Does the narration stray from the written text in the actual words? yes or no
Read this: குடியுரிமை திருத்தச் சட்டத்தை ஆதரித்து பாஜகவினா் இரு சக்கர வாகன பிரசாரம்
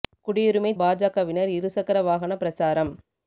yes